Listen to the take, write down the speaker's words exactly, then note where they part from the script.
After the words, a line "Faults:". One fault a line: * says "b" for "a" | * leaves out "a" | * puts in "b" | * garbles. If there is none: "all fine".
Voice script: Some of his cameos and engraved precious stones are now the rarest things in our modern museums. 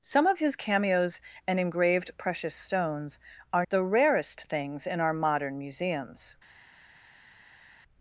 Some of his cameos and engraved precious stones are the rarest things in our modern museums.
Faults:
* leaves out "now"